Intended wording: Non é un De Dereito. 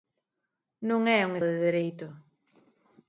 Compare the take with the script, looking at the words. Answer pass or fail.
pass